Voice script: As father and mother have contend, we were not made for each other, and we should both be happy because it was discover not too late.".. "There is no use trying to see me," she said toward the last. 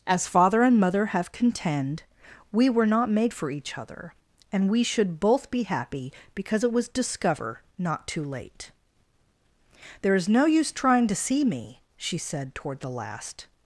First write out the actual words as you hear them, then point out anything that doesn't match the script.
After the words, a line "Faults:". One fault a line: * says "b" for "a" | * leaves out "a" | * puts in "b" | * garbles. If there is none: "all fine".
As father and mother have contend, we were not made for each other, and we should both be happy because it was discover not too late.".. "There is no use trying to see me," she said toward the last.
Faults:
all fine